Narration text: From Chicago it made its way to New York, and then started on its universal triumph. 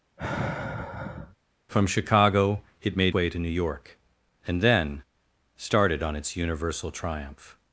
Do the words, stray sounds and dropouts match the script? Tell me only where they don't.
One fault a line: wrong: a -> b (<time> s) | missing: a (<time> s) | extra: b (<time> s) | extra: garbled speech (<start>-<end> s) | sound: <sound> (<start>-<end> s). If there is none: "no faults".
sound: sigh (0.2-1.4 s)
missing: its (3.1 s)